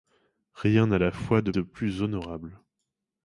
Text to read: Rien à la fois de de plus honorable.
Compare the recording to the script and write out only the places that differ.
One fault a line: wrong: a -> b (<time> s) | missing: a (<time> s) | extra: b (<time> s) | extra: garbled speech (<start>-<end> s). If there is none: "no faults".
no faults